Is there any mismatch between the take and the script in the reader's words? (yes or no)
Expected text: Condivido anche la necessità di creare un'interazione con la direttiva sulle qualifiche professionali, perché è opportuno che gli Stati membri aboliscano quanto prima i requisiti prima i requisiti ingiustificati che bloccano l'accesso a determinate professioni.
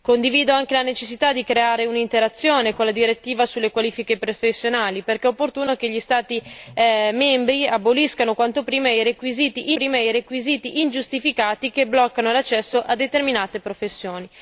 no